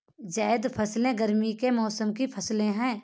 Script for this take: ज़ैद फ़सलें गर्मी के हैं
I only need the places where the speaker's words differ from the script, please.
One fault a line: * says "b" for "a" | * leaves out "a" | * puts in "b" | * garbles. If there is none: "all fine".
* puts in "मौसम की फ़सलें"